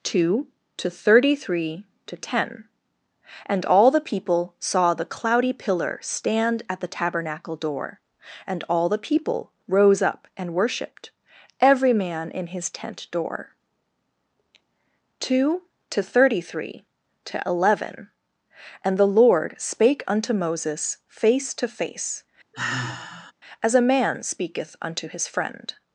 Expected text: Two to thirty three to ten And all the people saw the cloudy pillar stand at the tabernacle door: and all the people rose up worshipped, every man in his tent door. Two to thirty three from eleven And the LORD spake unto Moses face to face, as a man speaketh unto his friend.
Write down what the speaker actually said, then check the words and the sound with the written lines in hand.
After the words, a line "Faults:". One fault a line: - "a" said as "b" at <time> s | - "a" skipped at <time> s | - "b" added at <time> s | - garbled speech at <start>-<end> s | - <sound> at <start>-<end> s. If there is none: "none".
Two to thirty three to ten And all the people saw the cloudy pillar stand at the tabernacle door: and all the people rose up and worshipped, every man in his tent door. Two to thirty three to eleven And the LORD spake unto Moses face to face, as a man speaketh unto his friend.
Faults:
- "and" added at 10.4 s
- "from" said as "to" at 17.2 s
- sigh at 22.5-23.3 s